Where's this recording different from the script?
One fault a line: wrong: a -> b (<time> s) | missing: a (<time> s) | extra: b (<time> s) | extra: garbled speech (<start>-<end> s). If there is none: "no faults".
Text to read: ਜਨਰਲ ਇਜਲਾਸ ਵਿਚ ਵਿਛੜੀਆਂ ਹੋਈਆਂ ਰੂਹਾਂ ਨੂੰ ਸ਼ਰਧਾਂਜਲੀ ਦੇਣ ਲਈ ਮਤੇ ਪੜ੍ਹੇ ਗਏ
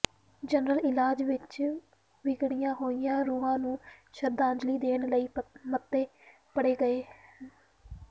no faults